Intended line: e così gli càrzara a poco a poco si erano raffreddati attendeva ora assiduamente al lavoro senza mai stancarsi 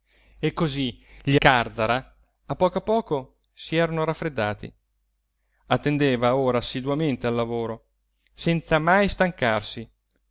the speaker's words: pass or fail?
pass